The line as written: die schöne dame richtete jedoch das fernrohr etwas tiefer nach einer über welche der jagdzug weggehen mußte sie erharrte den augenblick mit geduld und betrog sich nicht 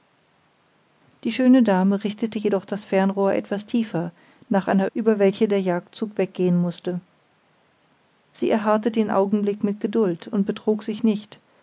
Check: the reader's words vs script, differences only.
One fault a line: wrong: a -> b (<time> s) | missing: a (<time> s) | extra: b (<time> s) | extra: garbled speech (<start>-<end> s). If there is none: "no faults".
no faults